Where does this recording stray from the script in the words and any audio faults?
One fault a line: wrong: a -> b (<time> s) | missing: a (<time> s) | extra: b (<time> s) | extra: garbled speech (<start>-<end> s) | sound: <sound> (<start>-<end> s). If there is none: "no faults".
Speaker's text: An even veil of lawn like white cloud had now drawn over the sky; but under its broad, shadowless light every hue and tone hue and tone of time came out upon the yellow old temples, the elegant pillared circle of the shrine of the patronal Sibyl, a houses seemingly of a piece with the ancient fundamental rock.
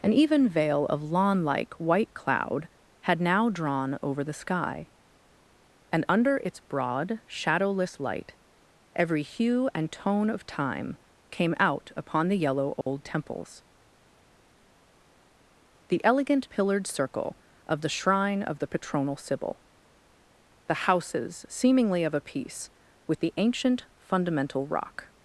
wrong: but -> and (5.9 s)
missing: hue and tone (10.3 s)
sound: dropout (12.8-12.9 s)
wrong: a -> the (20.7 s)